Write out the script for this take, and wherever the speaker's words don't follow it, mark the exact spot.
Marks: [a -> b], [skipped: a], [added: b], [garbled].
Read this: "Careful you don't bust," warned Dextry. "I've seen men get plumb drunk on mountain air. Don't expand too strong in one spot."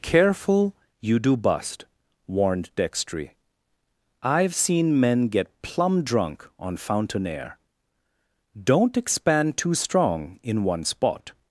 "Careful you [don't -> do] bust," warned Dextry. "I've seen men get plumb drunk on [mountain -> fountain] air. Don't expand too strong in one spot."